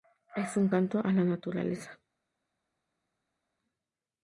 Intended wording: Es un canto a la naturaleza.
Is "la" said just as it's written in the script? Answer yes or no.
yes